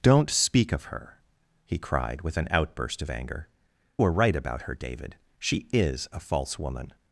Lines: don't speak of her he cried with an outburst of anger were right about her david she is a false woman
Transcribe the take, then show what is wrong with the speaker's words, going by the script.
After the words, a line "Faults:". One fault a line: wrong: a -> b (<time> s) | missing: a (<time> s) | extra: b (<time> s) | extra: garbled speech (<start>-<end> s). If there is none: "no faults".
don't speak of her he cried with an outburst of anger were right about her david she is a false woman
Faults:
no faults